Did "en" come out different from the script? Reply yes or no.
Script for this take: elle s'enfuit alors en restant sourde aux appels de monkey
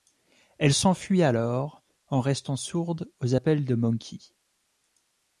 no